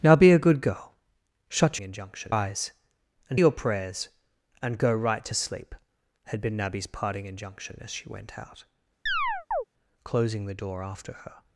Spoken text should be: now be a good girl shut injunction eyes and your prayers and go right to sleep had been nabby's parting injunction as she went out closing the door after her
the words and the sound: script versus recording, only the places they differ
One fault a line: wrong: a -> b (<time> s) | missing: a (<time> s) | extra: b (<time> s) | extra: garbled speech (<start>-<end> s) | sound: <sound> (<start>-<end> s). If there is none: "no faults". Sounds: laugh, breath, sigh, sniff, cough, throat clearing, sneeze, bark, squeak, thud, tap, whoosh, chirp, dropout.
sound: chirp (9.1-9.6 s)